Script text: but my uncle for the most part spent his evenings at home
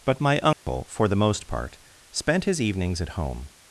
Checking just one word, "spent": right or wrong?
right